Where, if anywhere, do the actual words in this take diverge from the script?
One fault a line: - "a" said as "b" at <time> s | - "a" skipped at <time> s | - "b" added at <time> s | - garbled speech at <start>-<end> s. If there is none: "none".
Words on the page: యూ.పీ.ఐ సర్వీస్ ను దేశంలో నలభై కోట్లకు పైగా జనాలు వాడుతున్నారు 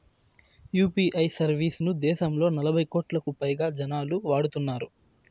none